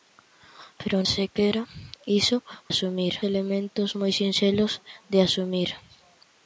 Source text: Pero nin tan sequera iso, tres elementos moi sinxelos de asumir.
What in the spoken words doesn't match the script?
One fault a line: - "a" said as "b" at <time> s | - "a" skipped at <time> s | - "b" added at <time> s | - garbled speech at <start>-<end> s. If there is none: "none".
- "nin tan" skipped at 1.0 s
- "tres" said as "asumir" at 2.7 s